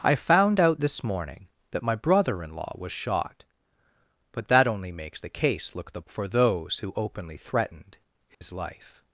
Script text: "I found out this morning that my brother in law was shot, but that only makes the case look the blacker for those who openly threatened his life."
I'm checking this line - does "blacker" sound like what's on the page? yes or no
no